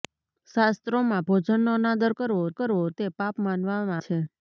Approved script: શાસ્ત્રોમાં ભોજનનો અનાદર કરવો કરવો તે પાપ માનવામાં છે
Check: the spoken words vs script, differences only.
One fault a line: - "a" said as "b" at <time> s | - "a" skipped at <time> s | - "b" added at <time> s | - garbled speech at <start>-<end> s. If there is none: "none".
none